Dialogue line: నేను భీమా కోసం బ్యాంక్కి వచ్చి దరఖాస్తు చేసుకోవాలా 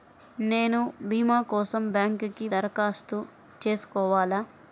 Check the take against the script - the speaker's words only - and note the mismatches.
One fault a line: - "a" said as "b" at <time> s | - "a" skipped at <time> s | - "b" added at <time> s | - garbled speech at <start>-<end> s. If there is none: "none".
- "వచ్చి" skipped at 2.5 s